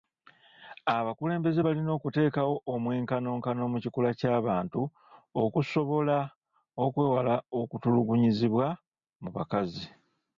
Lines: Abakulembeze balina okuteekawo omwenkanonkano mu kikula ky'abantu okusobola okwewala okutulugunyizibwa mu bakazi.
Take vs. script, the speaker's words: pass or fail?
pass